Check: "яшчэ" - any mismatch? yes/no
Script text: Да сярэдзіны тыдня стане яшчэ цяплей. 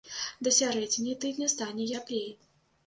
yes